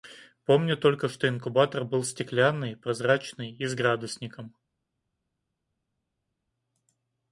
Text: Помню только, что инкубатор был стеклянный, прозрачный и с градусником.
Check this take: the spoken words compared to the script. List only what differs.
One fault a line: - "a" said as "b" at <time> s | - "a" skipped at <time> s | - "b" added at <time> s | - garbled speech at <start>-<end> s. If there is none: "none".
none